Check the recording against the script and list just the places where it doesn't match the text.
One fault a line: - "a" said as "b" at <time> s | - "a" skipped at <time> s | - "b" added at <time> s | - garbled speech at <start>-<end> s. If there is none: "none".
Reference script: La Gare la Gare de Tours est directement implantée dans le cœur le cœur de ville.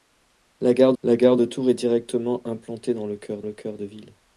none